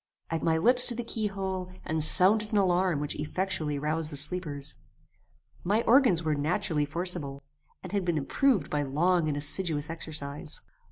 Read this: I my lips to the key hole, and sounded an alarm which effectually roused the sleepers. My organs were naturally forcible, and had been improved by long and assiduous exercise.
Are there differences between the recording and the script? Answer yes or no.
no